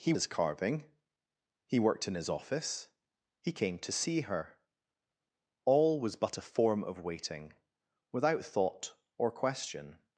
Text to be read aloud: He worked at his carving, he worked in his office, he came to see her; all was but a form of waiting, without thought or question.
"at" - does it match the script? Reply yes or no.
no